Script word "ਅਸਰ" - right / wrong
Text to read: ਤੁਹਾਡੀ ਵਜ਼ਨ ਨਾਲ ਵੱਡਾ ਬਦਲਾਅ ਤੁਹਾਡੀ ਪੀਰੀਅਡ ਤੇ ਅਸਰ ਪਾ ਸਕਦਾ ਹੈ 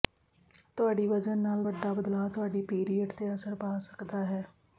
right